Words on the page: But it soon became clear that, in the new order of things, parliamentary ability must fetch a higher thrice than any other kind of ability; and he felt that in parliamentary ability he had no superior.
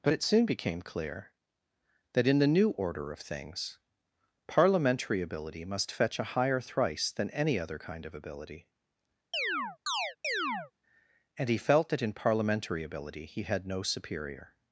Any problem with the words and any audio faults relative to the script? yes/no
yes